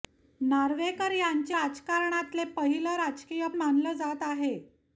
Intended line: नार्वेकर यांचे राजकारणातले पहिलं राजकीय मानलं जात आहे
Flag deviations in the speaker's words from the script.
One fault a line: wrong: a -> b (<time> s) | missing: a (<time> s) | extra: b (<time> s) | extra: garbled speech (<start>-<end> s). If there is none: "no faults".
no faults